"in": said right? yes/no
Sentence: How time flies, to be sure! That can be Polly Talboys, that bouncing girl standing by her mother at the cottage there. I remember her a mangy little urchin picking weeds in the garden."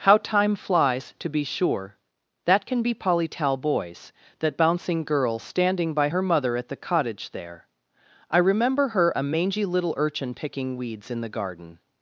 yes